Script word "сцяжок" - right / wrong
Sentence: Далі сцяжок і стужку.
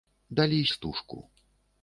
wrong